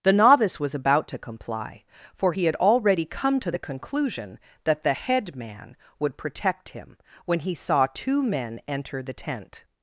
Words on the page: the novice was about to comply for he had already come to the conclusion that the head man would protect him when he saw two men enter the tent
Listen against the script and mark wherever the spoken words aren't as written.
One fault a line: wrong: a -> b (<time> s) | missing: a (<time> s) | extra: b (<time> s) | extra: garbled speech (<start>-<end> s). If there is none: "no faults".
no faults